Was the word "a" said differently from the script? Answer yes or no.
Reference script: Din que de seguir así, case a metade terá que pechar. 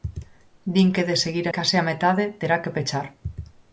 no